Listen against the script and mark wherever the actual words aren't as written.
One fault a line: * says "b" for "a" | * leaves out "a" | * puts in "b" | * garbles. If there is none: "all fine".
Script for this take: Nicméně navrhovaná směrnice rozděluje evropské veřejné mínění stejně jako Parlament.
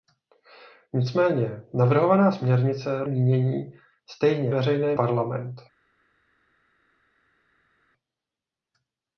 * leaves out "rozděluje evropské veřejné"
* says "veřejné" for "jako"